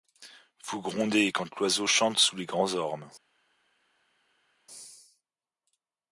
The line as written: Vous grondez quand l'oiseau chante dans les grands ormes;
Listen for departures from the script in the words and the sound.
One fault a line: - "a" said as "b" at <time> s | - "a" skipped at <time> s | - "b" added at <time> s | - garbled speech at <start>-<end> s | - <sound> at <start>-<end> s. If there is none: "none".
- "dans" said as "sous" at 2.2 s